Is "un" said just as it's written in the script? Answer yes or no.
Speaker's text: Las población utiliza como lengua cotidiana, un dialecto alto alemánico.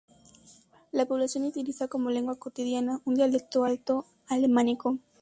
yes